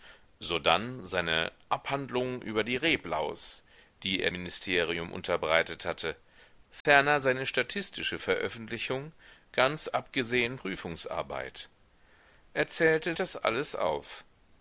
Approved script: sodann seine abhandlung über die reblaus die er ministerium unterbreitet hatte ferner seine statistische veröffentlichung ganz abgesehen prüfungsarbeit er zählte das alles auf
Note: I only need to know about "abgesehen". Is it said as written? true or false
true